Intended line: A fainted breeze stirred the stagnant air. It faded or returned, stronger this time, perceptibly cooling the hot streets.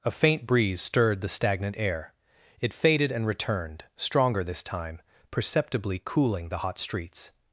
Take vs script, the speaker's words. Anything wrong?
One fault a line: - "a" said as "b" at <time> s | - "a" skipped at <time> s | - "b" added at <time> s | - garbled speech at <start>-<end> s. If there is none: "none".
- "fainted" said as "faint" at 0.1 s
- "or" said as "and" at 3.1 s